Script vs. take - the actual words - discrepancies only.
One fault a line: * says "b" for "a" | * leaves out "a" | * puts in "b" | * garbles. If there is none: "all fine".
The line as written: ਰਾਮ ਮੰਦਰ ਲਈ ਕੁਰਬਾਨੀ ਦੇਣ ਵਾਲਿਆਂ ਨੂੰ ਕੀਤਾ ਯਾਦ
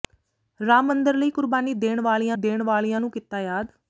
* puts in "ਦੇਣ ਵਾਲਿਆਂ"